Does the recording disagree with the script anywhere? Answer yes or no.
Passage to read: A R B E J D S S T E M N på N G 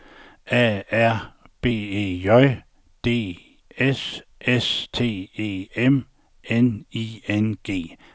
yes